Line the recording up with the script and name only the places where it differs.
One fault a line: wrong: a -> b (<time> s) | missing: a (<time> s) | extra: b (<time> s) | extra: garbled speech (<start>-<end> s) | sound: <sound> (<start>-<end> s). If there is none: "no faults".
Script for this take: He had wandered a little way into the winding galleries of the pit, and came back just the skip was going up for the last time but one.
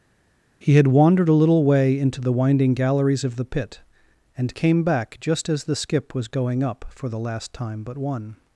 extra: as (5.5 s)